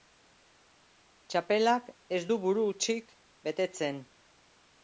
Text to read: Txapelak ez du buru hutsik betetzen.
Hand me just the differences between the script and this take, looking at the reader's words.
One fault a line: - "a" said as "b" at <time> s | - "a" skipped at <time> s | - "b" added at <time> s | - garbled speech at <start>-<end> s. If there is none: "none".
none